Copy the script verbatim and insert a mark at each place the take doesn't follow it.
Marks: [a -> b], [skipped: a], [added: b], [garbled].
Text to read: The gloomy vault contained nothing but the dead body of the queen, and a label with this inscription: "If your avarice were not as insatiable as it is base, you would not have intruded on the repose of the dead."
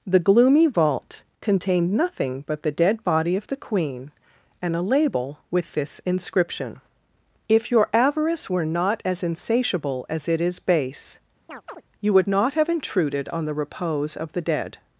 The gloomy vault contained nothing but the dead body of the queen, and a label with this inscription: "If your avarice were not as insatiable as it is base, you would not have intruded on the repose of the dead."